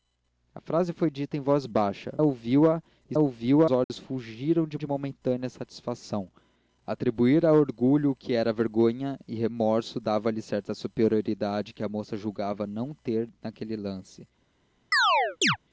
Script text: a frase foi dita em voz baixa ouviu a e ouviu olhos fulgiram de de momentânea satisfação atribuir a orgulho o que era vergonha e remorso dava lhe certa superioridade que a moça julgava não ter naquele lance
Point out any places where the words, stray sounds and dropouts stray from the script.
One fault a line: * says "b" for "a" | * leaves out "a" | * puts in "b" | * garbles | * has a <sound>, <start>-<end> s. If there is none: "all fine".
* has a dropout, 3.8-3.9 s
* has a chirp, 14.9-15.6 s